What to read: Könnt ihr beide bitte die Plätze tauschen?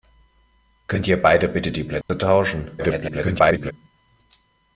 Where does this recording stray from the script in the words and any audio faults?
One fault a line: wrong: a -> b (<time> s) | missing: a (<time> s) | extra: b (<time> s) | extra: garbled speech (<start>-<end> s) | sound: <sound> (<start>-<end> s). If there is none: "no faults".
sound: dropout (2.0-2.1 s)
extra: garbled speech (2.8-3.7 s)